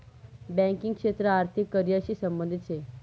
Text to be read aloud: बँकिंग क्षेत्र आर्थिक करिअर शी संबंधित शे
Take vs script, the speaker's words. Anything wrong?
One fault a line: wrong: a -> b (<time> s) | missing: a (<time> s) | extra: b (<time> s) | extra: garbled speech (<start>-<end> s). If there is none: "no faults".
no faults